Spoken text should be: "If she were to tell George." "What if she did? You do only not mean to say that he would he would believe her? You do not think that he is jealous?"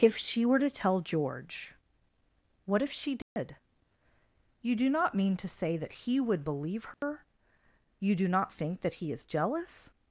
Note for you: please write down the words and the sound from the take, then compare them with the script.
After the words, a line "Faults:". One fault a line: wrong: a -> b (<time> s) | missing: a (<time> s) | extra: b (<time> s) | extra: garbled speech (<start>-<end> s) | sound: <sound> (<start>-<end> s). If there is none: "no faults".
"If she were to tell George." "What if she did? You do not mean to say that he would believe her? You do not think that he is jealous?"
Faults:
sound: dropout (3.2-3.4 s)
missing: only (4.9 s)
missing: he would (6.4 s)
sound: dropout (6.9-7.0 s)